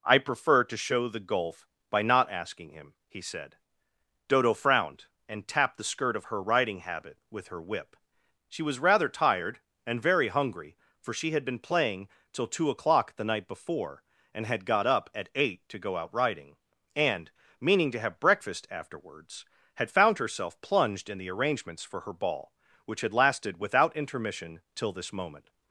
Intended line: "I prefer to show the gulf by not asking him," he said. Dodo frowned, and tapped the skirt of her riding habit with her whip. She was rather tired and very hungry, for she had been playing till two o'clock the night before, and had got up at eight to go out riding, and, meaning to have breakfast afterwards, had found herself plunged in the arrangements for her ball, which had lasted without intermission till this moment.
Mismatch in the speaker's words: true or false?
false